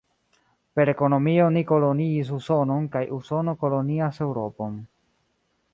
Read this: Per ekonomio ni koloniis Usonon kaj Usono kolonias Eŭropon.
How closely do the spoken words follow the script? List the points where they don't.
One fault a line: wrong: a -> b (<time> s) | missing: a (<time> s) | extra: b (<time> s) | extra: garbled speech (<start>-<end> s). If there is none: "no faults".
no faults